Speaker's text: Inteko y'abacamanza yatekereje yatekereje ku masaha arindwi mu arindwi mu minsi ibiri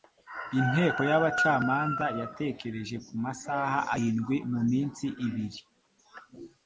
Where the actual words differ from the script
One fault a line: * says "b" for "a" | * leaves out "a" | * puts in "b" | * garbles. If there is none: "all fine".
* leaves out "yatekereje"
* leaves out "arindwi mu"